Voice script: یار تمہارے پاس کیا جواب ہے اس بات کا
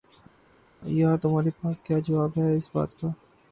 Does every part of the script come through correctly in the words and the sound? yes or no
yes